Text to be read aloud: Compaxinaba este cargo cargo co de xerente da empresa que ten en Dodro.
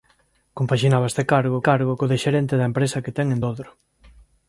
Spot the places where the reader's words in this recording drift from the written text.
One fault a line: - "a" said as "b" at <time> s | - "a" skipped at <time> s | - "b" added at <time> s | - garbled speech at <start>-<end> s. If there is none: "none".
none